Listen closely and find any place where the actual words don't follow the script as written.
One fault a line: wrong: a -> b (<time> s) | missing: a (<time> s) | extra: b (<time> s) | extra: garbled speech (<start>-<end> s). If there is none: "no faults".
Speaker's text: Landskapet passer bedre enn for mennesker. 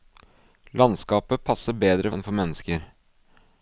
no faults